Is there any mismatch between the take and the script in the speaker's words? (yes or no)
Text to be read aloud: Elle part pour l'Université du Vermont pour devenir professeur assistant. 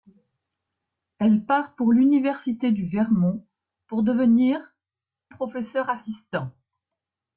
no